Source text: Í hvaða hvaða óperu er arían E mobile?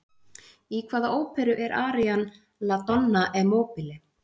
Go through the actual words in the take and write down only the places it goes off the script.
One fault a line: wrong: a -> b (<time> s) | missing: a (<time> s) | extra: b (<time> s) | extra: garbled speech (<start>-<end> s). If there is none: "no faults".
missing: hvaða (1.1 s)
extra: La Donna (2.7 s)